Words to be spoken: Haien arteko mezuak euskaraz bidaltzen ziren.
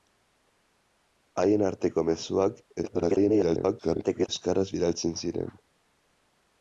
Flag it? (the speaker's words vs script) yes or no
yes